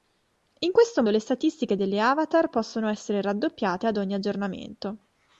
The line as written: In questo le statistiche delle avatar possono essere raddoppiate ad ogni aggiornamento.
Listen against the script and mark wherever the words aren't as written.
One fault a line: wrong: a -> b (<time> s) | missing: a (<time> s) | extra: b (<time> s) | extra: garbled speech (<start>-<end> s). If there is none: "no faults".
no faults